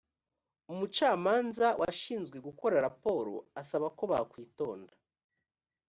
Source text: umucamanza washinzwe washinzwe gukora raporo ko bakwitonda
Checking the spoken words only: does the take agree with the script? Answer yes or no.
no